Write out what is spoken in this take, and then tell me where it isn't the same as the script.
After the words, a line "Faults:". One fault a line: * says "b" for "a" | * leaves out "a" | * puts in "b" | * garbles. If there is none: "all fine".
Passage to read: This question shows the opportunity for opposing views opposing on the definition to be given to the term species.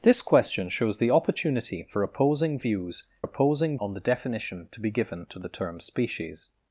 This question shows the opportunity for opposing views opposing on the definition to be given to the term species.
Faults:
all fine